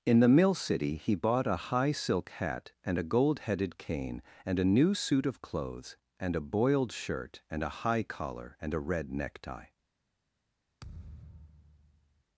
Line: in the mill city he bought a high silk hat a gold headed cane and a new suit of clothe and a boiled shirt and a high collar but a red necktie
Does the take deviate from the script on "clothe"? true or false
true